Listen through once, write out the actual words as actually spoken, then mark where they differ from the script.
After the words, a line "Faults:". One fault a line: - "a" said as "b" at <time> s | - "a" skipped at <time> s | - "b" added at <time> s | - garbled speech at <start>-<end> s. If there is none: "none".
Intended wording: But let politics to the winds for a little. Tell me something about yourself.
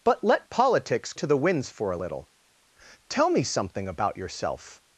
But let politics to the winds for a little. Tell me something about yourself.
Faults:
none